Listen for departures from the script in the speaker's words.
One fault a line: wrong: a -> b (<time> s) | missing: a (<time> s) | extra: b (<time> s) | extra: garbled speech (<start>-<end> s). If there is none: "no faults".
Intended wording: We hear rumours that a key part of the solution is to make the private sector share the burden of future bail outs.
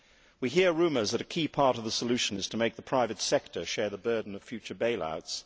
no faults